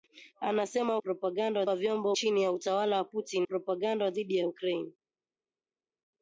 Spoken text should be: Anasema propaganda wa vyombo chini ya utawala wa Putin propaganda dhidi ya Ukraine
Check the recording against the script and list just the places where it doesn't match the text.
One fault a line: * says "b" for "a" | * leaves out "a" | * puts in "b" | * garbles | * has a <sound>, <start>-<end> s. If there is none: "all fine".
all fine